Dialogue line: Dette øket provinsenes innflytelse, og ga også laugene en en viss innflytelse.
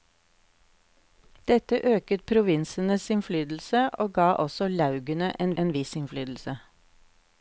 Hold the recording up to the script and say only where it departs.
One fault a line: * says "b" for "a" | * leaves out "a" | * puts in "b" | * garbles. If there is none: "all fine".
all fine